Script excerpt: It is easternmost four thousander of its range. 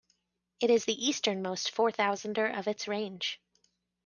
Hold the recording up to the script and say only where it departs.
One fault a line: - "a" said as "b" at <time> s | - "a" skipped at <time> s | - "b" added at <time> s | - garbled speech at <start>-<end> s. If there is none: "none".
- "the" added at 0.8 s